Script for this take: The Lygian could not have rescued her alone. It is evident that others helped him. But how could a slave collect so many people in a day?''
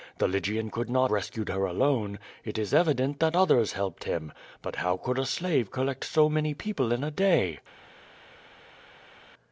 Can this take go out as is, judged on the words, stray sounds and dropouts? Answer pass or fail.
fail